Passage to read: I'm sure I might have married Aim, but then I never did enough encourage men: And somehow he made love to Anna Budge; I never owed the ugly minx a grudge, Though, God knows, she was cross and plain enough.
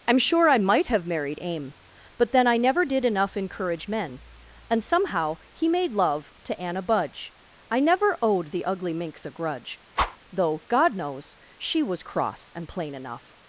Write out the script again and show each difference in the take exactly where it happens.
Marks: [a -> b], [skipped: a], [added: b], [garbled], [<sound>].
I'm sure I might have married Aim, but then I never did enough encourage men: And somehow he made love to Anna Budge; I never owed the ugly minx a grudge, [whoosh] Though, God knows, she was cross and plain enough.